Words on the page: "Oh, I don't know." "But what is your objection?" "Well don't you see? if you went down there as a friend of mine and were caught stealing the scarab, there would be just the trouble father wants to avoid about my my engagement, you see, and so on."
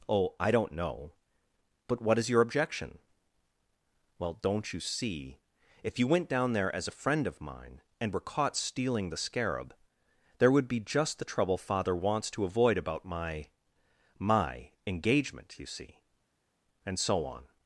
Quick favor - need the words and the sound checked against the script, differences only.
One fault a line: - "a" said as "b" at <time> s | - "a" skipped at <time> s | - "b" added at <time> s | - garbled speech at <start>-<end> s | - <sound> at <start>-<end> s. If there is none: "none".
none